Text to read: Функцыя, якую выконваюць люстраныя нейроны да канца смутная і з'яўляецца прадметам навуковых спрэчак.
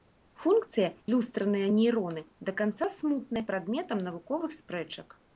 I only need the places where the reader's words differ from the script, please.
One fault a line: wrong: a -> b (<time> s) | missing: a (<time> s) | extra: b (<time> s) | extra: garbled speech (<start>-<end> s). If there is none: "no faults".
missing: якую выконваюць (0.9 s)
missing: і з'яўляецца (3.4 s)